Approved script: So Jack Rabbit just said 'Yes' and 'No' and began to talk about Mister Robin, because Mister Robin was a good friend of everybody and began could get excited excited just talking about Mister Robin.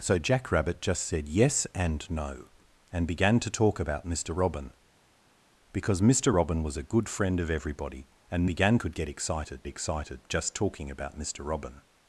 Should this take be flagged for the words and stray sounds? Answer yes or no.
no